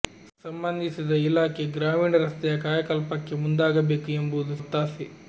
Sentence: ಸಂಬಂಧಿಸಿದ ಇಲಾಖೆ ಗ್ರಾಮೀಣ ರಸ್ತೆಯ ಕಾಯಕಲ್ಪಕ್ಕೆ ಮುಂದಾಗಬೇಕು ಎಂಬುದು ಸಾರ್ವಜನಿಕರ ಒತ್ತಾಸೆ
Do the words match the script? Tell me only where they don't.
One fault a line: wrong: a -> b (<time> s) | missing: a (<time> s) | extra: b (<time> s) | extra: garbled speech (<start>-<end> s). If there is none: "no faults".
missing: ಸಾರ್ವಜನಿಕರ (4.5 s)